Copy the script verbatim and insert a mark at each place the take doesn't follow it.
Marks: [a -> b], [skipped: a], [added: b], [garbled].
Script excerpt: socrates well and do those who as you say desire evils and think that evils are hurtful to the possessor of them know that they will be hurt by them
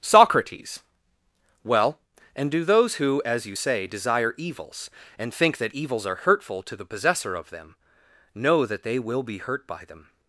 socrates well and do those who as you say desire evils and think that evils are hurtful to the possessor of them know that they will be hurt by them